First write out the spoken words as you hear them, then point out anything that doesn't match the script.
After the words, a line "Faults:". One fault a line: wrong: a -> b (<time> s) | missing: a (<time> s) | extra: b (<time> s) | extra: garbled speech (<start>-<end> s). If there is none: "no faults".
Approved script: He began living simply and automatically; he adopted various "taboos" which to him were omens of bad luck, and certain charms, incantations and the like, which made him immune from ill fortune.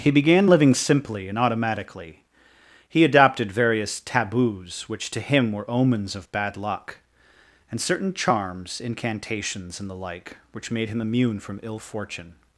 He began living simply and automatically; he adopted various "taboos" which to him were omens of bad luck, and certain charms, incantations and the like, which made him immune from ill fortune.
Faults:
no faults